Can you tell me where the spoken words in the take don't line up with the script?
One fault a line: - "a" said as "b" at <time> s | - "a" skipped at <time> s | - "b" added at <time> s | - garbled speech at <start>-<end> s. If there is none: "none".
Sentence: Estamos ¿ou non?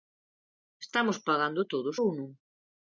- "pagando todos" added at 1.3 s